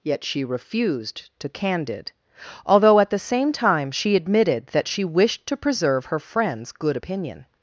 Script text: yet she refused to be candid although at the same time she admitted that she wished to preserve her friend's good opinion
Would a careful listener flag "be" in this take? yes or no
yes